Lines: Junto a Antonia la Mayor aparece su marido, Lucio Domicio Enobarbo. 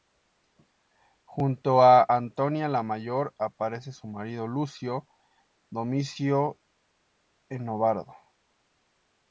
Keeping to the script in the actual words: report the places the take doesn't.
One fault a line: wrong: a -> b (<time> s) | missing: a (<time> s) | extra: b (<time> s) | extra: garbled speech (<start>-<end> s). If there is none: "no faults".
no faults